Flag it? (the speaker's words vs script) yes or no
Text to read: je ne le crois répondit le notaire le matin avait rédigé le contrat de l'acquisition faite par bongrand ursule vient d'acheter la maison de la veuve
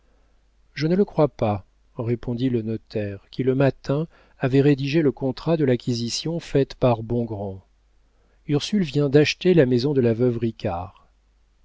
yes